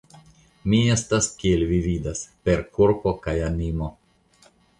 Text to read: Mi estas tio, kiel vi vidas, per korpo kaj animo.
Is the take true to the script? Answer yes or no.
no